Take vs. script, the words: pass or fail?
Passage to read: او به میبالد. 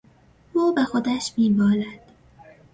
fail